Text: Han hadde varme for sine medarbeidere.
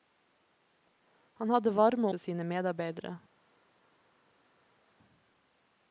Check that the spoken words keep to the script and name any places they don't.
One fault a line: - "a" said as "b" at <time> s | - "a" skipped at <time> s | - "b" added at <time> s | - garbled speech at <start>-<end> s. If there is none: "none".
none